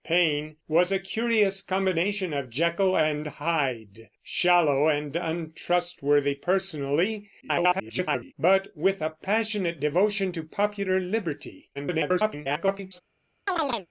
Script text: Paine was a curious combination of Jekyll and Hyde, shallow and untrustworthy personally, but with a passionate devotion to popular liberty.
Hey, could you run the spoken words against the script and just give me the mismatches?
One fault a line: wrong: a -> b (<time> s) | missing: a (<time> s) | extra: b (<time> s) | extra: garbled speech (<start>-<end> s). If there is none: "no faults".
extra: garbled speech (7.4-8.3 s)
extra: garbled speech (11.7-13.0 s)